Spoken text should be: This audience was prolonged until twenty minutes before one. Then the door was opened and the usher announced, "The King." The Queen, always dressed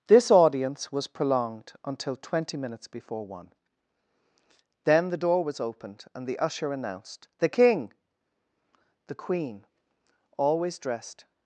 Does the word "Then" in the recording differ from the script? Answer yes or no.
no